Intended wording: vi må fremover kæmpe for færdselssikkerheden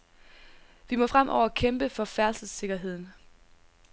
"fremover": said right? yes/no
yes